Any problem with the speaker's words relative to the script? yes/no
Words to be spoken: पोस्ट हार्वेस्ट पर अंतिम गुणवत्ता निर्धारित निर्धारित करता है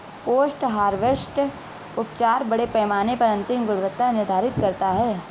yes